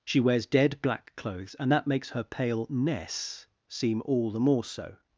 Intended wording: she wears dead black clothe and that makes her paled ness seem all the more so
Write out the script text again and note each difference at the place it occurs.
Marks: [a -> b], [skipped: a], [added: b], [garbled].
she wears dead black [clothe -> clothes] and that makes her [paled -> pale] ness seem all the more so